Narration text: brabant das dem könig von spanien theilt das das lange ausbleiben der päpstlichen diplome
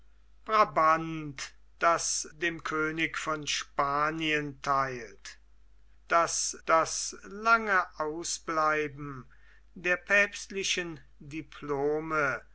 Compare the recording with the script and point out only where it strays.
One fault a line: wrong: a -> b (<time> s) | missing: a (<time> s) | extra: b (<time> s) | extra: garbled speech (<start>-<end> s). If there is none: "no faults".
no faults